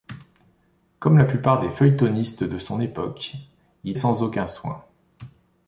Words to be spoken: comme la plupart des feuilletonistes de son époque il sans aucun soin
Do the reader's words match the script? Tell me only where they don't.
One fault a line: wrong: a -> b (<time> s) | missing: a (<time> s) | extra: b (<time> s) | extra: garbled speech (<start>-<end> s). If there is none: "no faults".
no faults